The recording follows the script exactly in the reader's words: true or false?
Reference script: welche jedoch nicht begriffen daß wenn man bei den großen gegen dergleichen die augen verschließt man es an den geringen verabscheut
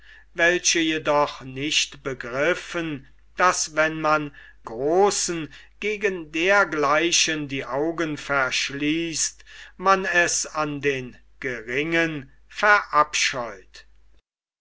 false